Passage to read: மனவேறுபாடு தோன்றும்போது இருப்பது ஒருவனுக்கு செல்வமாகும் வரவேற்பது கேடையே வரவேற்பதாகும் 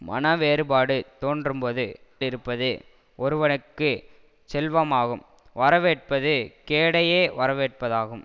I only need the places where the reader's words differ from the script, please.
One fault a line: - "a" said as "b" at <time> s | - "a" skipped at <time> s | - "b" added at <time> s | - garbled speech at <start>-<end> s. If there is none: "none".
none